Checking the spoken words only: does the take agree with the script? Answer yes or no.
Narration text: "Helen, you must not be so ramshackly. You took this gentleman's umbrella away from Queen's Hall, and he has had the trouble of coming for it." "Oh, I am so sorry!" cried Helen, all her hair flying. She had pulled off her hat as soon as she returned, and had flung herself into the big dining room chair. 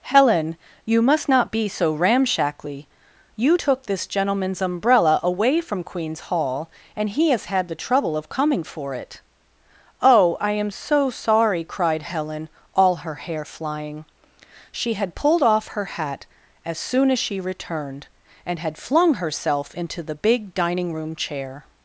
yes